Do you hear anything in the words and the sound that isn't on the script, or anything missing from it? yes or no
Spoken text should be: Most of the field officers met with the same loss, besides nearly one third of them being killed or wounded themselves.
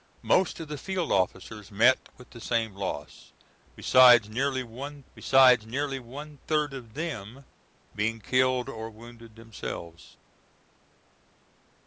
yes